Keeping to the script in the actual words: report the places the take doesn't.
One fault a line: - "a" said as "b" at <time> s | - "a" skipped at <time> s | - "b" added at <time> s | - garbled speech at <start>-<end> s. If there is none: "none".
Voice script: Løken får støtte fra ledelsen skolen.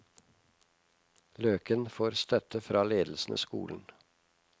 none